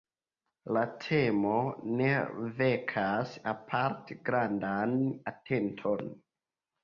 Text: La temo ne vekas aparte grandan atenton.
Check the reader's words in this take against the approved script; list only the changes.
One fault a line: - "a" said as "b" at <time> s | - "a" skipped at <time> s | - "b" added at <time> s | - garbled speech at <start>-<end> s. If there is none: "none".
none